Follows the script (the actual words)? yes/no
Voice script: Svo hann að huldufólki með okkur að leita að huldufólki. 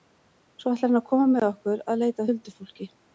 no